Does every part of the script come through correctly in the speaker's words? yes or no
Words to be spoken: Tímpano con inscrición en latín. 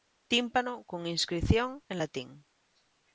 yes